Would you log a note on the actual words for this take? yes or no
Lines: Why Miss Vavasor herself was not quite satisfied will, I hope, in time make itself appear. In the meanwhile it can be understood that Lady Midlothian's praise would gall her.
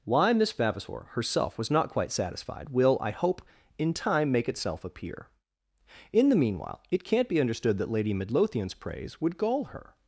yes